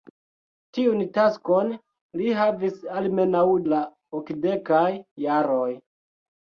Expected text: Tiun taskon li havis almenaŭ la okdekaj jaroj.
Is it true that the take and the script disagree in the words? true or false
false